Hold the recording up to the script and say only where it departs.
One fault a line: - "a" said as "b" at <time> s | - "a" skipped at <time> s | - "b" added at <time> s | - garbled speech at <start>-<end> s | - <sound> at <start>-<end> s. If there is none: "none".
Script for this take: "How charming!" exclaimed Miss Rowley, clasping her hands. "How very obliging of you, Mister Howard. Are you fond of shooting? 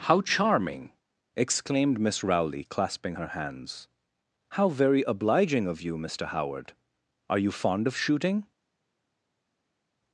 none